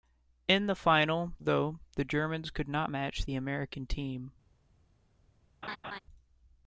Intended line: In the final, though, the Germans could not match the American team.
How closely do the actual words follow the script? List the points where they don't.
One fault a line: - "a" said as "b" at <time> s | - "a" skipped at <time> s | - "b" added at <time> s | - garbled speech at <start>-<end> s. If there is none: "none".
none